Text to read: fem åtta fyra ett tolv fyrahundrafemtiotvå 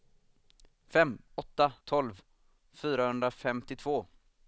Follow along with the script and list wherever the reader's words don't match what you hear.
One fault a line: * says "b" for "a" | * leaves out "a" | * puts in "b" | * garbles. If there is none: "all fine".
* leaves out "fyra ett"